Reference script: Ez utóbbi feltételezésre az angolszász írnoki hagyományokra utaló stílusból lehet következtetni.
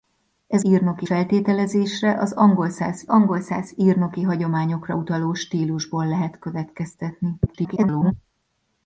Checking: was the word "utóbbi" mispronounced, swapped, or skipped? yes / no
yes